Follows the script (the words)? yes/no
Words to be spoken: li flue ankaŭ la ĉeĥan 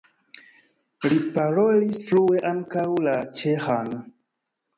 no